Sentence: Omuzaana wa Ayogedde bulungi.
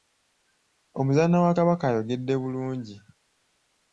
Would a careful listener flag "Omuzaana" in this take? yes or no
no